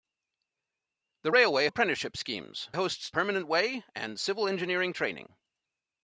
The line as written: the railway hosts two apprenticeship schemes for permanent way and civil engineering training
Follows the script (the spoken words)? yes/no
no